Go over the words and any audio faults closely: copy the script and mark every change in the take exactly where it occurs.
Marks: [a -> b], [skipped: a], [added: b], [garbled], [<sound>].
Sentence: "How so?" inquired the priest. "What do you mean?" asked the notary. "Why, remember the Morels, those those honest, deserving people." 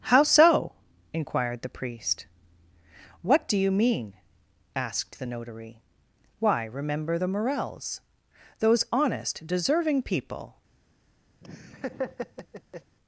"How so?" inquired the priest. "What do you mean?" asked the notary. "Why, remember the Morels, those [skipped: those] honest, deserving people." [laugh]